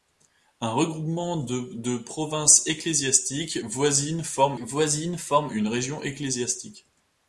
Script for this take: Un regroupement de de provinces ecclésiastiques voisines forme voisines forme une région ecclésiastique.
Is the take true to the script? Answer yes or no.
yes